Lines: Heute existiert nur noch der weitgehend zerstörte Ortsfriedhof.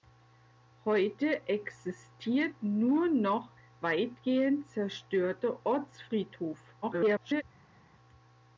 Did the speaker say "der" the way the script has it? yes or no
no